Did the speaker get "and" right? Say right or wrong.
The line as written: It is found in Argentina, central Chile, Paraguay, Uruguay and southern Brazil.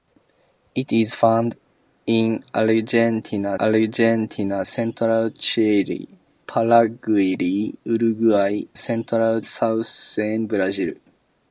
wrong